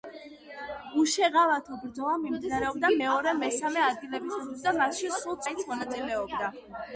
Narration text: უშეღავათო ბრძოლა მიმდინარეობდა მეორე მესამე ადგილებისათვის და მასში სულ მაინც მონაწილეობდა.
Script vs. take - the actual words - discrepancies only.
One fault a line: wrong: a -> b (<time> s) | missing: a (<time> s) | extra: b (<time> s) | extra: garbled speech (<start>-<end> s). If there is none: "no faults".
no faults